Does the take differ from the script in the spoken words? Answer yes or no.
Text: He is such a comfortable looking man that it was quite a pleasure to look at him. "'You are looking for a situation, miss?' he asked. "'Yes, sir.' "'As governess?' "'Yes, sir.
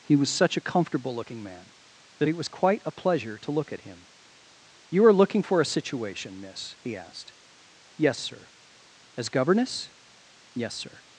yes